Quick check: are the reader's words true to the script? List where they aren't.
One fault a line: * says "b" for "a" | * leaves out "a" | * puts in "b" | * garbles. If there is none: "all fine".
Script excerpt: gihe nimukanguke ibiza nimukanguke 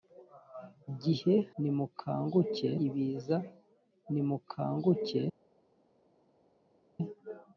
all fine